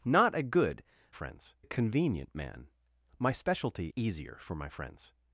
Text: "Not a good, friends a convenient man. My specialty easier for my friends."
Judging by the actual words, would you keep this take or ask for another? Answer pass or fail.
pass